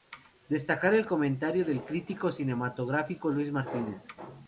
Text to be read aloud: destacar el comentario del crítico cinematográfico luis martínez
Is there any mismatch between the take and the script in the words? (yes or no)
no